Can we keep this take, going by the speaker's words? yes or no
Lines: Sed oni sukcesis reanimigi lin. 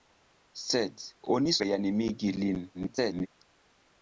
no